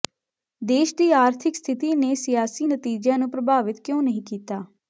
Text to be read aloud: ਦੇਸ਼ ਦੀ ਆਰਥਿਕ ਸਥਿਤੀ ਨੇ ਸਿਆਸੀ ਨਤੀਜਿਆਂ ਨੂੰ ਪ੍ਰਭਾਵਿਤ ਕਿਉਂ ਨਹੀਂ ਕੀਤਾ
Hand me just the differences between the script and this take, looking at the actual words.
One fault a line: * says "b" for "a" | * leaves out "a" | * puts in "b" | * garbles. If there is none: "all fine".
all fine